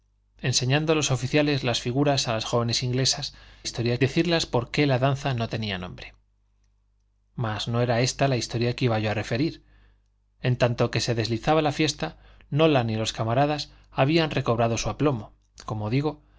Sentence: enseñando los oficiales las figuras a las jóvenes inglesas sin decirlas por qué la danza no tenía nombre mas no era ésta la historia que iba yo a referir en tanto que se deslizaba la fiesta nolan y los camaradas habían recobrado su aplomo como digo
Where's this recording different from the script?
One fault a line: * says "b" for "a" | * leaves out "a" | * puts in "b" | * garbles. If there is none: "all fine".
* says "historia" for "sin"